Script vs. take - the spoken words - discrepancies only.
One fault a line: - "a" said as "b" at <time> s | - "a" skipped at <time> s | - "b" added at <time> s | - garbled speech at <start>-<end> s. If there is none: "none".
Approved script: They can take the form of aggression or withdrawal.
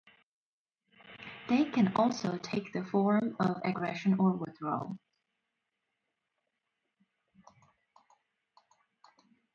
- "also" added at 1.9 s